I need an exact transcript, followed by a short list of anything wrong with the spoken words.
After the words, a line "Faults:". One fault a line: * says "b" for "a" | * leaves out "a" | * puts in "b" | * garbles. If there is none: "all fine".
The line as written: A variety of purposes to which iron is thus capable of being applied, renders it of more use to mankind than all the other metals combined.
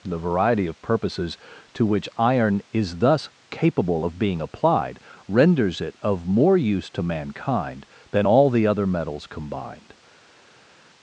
The variety of purposes to which iron is thus capable of being applied, renders it of more use to mankind than all the other metals combined.
Faults:
* says "The" for "A"